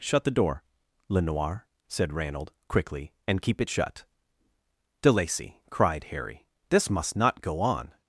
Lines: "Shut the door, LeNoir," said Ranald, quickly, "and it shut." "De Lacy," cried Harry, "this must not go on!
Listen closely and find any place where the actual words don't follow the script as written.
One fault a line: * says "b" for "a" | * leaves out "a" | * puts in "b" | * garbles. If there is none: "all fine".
* puts in "keep"